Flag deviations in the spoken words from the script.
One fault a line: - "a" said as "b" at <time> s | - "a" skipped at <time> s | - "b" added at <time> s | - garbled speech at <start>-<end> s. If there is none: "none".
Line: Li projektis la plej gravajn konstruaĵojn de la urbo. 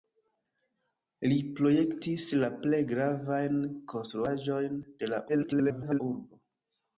- garbled speech at 5.3-6.0 s